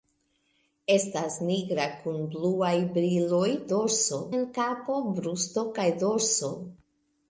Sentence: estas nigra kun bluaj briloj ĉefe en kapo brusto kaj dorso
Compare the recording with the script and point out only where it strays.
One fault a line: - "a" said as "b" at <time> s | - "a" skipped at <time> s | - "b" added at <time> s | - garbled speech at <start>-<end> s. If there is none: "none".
- "ĉefe" said as "dorso" at 3.7 s